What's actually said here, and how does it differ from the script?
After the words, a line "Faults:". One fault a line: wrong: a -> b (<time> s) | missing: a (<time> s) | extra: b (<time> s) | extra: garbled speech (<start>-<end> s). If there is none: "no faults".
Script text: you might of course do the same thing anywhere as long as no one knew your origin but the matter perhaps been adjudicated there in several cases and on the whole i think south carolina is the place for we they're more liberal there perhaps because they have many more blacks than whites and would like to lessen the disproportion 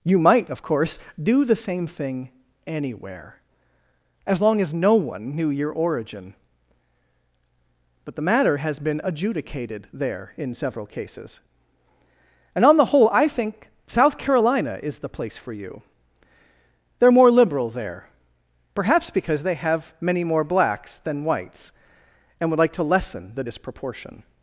you might of course do the same thing anywhere as long as no one knew your origin but the matter has been adjudicated there in several cases and on the whole i think south carolina is the place for you they're more liberal there perhaps because they have many more blacks than whites and would like to lessen the disproportion
Faults:
wrong: perhaps -> has (8.6 s)
wrong: we -> you (15.5 s)